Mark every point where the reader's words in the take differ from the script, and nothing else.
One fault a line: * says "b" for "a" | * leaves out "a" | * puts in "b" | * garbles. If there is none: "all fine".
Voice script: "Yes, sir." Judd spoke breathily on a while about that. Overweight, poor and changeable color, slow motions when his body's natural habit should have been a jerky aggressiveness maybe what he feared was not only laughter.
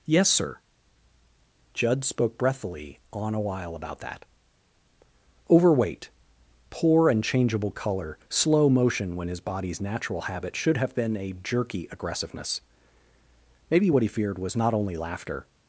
* says "motion" for "motions"